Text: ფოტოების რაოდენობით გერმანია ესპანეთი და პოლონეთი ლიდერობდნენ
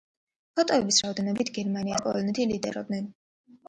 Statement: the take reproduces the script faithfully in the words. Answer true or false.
false